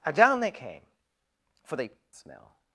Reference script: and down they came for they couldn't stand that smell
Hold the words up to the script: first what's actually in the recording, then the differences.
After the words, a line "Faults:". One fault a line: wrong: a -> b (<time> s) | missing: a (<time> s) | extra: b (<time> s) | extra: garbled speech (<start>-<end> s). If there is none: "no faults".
and down they came for they smell
Faults:
missing: couldn't stand that (1.9 s)